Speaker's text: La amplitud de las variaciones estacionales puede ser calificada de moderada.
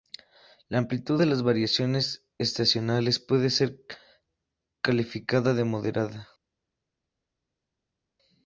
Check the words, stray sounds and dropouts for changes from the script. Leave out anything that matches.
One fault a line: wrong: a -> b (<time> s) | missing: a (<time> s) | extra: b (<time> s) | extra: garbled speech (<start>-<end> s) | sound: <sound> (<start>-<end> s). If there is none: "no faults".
no faults